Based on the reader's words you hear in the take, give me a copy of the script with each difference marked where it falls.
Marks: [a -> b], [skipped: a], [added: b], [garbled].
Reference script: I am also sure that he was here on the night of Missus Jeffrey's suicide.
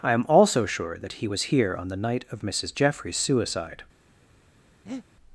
I am also sure that he was here on the night of Missus Jeffrey's suicide.